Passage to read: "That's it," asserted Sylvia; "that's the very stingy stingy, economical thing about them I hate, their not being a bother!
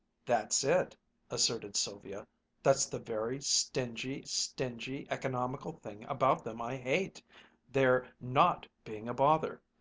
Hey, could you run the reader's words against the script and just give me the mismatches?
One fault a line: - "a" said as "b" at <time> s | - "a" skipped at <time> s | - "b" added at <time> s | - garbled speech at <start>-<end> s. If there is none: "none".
none